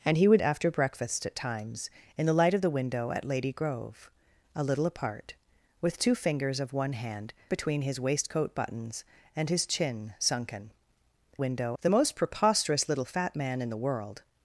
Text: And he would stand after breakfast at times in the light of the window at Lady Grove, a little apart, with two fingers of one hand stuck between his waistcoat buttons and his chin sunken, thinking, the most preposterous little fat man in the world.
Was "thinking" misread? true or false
true